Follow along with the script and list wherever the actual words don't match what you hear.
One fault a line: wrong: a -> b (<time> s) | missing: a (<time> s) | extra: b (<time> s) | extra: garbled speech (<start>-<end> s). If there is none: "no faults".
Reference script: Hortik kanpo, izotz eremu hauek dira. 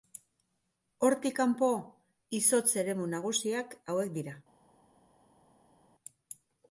extra: nagusiak (3.1 s)